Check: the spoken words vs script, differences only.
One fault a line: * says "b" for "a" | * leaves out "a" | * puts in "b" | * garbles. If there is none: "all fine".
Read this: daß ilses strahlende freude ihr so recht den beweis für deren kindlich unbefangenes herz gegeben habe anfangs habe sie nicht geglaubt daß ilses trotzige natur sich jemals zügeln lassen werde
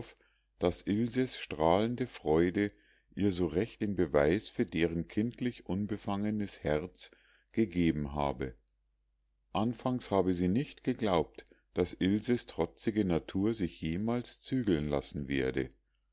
all fine